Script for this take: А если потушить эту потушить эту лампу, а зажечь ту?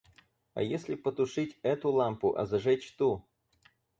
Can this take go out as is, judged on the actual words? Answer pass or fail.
fail